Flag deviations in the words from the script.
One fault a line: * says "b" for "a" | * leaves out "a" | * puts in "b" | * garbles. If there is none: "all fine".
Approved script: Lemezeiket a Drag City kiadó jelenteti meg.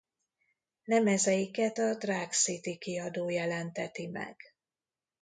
all fine